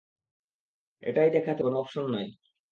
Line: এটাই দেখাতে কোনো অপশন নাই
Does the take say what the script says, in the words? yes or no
yes